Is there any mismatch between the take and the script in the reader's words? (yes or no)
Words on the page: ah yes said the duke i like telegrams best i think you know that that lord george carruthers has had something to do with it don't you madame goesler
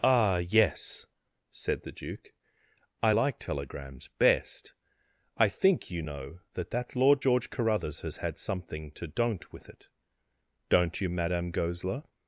yes